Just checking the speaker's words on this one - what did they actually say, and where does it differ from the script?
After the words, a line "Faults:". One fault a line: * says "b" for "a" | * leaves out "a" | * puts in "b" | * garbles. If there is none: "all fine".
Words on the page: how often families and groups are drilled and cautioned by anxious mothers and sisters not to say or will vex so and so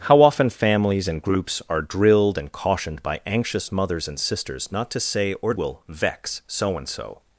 how often families and groups are drilled and cautioned by anxious mothers and sisters not to say or will vex so and so
Faults:
all fine